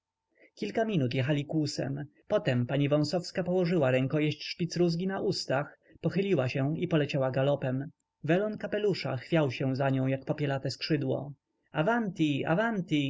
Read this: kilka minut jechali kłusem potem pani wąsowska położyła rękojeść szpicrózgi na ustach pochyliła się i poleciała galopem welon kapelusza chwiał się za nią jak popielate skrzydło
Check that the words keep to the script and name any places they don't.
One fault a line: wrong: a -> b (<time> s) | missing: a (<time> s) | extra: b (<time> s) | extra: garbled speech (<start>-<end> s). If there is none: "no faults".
no faults